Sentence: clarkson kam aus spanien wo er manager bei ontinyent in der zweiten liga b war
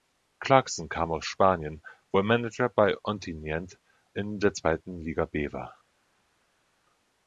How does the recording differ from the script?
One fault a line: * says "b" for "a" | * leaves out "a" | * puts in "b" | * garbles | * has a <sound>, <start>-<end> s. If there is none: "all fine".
all fine